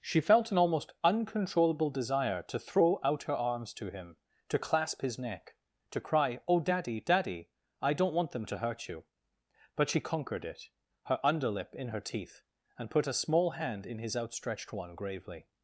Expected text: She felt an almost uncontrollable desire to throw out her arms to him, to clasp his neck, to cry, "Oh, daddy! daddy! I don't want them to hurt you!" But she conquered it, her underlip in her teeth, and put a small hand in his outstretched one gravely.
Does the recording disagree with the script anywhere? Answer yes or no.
no